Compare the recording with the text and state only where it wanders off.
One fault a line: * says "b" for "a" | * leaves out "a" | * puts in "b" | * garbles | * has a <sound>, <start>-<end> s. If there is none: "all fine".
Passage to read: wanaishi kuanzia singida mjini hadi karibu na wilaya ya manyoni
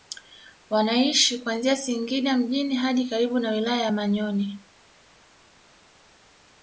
all fine